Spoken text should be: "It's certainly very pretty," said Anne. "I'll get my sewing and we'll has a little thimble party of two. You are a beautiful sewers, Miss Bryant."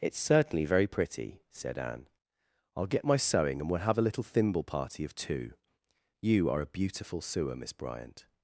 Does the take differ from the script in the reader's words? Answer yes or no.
yes